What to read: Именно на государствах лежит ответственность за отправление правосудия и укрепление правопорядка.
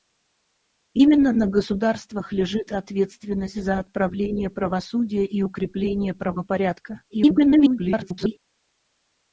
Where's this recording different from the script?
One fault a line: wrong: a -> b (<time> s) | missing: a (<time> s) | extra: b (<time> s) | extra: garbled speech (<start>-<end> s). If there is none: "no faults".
extra: garbled speech (7.1-8.4 s)